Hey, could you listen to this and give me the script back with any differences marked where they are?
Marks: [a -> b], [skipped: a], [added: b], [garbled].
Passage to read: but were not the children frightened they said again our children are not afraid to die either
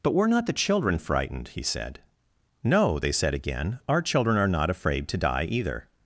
but were not the children frightened [added: he said no] they said again our children are not afraid to die either